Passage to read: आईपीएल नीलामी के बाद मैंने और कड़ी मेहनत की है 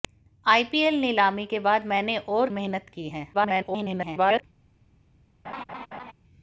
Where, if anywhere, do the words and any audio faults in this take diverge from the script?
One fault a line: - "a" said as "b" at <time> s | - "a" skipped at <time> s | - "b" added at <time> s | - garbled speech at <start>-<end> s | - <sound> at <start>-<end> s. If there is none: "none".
- "कड़ी" skipped at 2.5 s
- garbled speech at 3.3-4.4 s
- laugh at 5.4-6.1 s